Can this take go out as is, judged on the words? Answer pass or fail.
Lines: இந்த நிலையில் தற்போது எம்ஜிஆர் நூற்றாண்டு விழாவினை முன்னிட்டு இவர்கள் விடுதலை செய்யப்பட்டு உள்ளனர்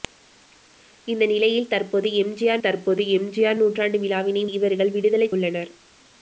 fail